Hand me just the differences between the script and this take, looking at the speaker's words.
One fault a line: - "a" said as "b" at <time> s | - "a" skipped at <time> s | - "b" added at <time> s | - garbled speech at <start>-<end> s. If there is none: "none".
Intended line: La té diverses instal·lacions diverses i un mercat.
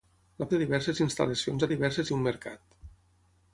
none